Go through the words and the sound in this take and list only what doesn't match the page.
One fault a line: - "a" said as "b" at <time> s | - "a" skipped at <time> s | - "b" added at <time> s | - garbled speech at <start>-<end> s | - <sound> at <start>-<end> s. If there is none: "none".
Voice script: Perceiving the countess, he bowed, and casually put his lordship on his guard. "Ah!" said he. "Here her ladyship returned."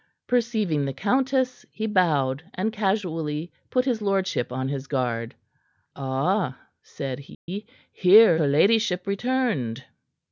- dropout at 7.3-7.5 s